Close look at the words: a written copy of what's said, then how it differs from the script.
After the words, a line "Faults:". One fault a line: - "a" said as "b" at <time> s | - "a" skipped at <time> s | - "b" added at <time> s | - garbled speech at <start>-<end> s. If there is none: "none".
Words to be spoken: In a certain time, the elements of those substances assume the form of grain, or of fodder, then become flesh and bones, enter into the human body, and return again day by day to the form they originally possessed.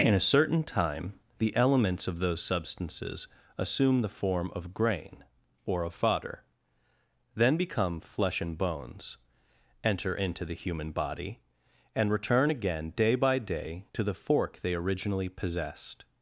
In a certain time, the elements of those substances assume the form of grain, or of fodder, then become flesh and bones, enter into the human body, and return again day by day to the fork they originally possessed.
Faults:
- "form" said as "fork" at 14.1 s